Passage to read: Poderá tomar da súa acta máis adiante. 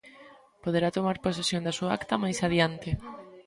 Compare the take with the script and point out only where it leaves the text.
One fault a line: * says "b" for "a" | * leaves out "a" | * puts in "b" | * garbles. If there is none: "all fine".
* puts in "posesión"